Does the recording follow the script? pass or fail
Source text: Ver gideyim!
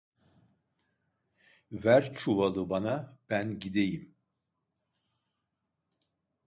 fail